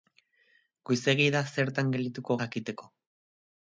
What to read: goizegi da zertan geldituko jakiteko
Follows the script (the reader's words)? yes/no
yes